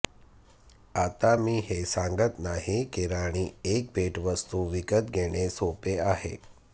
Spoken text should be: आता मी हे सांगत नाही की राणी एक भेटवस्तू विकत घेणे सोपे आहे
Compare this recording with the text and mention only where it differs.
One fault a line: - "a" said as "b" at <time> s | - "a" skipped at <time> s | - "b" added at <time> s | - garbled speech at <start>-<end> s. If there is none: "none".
none